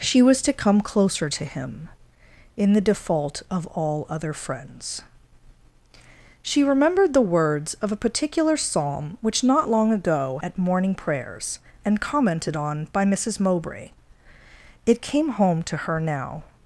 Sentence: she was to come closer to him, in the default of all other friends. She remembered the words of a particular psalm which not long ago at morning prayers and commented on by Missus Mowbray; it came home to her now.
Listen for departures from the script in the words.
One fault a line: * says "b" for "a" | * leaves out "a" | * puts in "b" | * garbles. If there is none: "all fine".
all fine